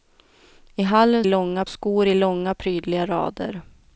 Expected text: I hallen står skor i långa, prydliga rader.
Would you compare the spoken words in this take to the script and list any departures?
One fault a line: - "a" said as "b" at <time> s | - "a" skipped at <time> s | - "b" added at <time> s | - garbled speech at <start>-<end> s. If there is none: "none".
- "står" said as "långa" at 1.2 s